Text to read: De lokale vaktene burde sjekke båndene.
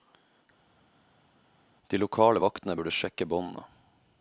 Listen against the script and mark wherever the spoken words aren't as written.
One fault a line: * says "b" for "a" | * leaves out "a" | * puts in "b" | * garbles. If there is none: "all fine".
all fine